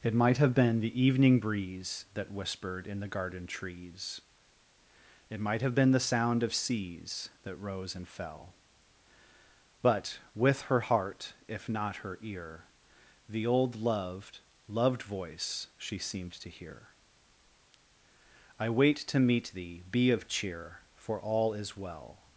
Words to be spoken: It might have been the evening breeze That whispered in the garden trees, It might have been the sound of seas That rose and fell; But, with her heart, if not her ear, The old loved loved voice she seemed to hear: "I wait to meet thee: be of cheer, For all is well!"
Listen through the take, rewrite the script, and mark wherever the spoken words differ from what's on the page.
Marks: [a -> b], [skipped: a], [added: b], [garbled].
It might have been the evening breeze That whispered in the garden trees, It might have been the sound of seas That rose and fell; But, with her heart, if not her ear, The old loved loved voice she seemed to hear: "I wait to meet thee: be of cheer, For all is well!"